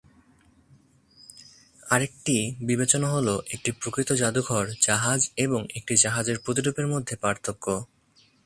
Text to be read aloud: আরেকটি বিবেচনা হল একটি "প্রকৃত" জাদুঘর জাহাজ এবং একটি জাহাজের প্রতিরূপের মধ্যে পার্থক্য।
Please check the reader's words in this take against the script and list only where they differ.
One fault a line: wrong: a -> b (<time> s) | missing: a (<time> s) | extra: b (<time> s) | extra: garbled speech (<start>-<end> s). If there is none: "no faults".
no faults